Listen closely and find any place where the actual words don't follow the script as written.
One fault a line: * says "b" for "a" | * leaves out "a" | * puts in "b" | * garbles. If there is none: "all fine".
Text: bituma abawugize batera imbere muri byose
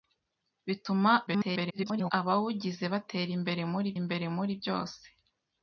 * garbles
* puts in "imbere muri"